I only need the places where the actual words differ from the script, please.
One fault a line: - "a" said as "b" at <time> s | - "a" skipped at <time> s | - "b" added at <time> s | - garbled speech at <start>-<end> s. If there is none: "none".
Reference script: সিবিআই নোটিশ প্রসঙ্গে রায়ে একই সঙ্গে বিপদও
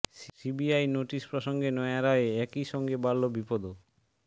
- "নয়া" added at 1.7 s
- "বাড়ল" added at 3.0 s